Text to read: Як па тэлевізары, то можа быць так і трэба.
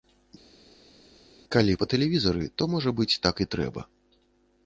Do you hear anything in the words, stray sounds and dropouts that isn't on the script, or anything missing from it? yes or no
yes